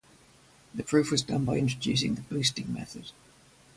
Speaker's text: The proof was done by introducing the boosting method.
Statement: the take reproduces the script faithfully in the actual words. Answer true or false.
true